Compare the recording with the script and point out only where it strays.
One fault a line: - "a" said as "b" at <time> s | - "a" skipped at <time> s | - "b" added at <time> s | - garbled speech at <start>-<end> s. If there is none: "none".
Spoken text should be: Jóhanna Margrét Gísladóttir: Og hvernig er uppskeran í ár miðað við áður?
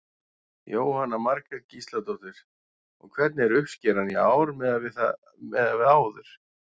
none